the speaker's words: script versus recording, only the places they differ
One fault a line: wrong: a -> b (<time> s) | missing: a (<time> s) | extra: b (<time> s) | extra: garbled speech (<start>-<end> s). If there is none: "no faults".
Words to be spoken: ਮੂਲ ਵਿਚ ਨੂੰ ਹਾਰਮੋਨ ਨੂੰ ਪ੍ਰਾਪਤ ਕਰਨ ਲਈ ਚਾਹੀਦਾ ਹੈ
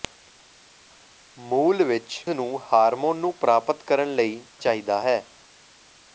no faults